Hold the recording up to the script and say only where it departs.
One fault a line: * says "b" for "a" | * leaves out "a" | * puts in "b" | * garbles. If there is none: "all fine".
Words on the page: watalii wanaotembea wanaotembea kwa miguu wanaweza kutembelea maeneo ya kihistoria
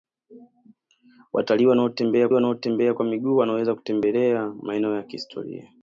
all fine